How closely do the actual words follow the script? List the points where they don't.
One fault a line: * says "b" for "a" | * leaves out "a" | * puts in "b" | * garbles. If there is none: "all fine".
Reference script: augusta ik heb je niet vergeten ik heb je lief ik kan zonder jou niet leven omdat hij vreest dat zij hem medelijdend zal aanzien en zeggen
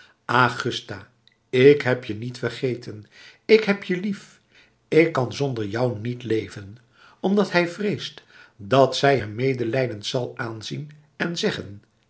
all fine